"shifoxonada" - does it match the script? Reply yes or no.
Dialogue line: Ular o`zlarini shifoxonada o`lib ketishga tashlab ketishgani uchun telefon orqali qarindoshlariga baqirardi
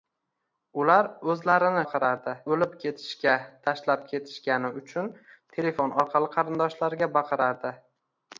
no